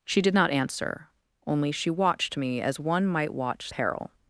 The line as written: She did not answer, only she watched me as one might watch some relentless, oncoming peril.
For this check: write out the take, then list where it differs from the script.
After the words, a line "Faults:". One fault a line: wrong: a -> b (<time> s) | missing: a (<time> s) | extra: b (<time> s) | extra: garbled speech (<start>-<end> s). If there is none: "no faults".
She did not answer, only she watched me as one might watch peril.
Faults:
missing: some relentless oncoming (3.7 s)